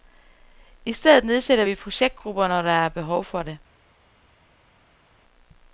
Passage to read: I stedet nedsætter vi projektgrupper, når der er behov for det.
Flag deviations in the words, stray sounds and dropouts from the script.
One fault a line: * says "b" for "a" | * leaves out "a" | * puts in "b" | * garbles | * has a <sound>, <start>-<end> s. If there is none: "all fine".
all fine